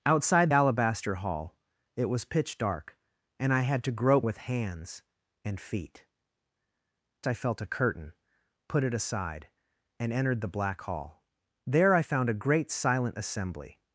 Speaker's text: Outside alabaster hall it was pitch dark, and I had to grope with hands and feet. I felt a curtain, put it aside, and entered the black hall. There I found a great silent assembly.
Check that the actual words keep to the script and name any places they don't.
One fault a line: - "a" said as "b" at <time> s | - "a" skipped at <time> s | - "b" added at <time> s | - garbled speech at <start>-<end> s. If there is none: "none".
none